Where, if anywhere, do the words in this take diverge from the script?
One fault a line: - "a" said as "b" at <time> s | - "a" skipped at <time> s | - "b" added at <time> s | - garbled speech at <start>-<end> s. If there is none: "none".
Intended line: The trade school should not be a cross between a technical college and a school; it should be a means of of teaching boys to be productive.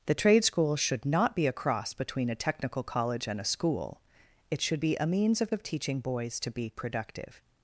none